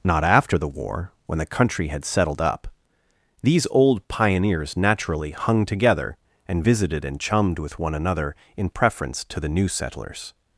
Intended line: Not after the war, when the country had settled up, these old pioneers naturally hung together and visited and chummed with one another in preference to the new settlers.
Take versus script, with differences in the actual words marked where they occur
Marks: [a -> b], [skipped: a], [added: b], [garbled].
Not after the war, when the country had settled up, these old pioneers naturally hung together and visited and chummed with one another in preference to the new settlers.